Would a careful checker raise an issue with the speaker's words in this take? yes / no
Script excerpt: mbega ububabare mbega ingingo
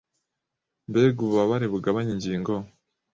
yes